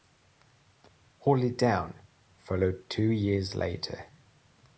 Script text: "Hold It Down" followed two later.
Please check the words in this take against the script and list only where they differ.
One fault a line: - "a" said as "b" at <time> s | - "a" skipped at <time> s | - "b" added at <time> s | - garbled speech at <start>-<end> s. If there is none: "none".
- "years" added at 3.1 s